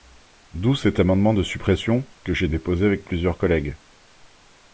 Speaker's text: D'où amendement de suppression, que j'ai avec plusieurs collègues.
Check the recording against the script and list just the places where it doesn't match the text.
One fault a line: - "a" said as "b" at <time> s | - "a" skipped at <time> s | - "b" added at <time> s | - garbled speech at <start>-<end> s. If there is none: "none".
- "cet" added at 0.7 s
- "déposé" added at 2.5 s